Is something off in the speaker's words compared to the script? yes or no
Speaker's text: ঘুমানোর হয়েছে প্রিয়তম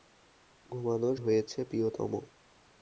no